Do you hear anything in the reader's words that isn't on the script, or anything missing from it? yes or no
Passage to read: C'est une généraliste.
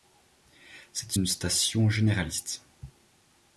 yes